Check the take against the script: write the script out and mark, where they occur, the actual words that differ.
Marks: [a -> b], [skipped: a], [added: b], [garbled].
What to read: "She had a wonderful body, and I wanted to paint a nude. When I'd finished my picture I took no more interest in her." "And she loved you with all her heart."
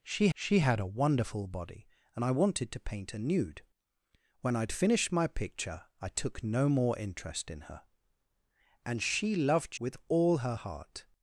"She [added: she] had a wonderful body, and I wanted to paint a nude. When I'd finished my picture I took no more interest in her." "And she loved [skipped: you] with all her heart."